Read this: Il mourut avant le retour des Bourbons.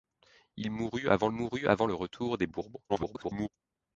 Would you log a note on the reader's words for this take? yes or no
yes